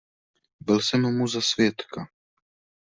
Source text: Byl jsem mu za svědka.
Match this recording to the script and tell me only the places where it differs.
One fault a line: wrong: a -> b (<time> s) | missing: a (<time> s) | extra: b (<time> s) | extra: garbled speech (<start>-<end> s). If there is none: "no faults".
no faults